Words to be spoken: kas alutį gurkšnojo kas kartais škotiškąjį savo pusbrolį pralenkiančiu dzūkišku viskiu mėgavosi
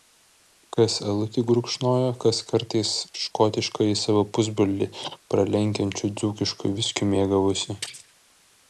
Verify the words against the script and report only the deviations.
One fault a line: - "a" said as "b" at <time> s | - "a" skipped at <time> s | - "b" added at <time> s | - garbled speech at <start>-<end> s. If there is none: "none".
none